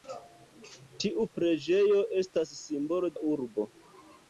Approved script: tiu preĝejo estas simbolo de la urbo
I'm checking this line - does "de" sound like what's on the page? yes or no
no